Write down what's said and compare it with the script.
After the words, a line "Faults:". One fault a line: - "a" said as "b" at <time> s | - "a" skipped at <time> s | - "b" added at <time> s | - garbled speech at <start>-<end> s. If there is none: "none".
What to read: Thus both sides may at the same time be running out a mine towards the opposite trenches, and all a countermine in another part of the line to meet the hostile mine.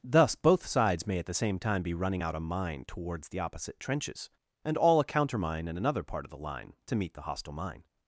Thus both sides may at the same time be running out a mine towards the opposite trenches, and all a countermine in another part of the line to meet the hostile mine.
Faults:
none